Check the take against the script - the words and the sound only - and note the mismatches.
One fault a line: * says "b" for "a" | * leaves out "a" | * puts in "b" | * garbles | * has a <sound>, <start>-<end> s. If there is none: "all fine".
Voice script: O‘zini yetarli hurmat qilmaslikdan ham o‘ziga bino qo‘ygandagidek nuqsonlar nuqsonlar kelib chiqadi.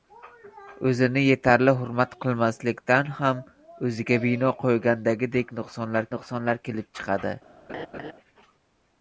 * has a laugh, 7.7-8.1 s